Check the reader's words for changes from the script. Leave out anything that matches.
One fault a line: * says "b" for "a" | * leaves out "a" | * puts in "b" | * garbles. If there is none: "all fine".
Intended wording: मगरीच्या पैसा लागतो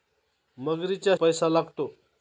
all fine